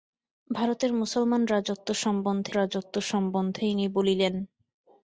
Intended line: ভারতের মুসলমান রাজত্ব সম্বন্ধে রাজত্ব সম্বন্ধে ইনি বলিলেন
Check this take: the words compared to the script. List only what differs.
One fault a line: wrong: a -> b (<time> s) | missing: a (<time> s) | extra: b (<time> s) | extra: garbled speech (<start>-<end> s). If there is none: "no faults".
no faults